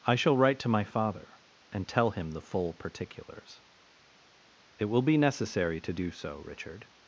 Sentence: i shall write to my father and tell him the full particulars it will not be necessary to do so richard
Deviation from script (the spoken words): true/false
true